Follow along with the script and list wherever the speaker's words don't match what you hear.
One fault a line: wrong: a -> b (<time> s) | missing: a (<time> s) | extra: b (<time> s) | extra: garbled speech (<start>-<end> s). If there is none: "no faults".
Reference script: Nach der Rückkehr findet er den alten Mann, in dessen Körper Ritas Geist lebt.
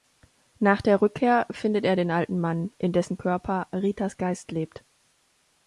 no faults